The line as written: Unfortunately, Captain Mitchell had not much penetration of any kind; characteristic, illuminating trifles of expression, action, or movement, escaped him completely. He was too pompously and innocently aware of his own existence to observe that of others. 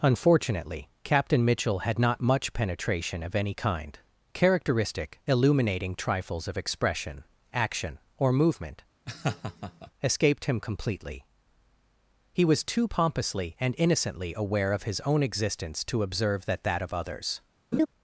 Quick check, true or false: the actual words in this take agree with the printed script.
false